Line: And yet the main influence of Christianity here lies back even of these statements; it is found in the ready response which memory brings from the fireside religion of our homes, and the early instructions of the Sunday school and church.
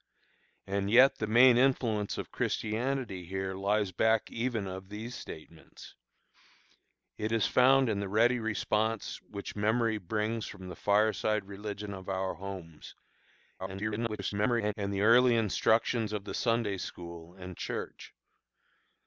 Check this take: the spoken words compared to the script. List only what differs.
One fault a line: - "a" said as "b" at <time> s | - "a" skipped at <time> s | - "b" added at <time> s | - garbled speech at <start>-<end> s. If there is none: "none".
- garbled speech at 13.6-14.7 s